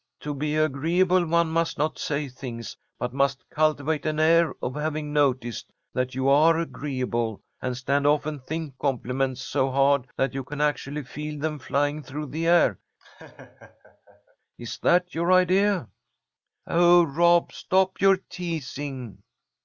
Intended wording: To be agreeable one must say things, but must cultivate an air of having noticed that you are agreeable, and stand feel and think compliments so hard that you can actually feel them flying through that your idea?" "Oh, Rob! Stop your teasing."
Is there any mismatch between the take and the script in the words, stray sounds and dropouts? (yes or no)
yes